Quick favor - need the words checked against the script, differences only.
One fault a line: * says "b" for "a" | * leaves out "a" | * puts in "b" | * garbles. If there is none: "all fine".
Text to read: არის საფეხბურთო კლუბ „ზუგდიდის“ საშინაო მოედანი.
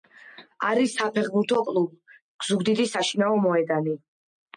all fine